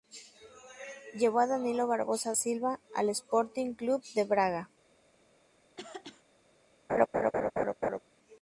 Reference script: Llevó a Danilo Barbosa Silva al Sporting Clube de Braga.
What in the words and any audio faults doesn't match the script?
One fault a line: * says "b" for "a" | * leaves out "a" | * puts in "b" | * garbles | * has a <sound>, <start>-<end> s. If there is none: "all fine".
* has a throat clearing, 5.8-6.2 s
* has a laugh, 6.9-8.0 s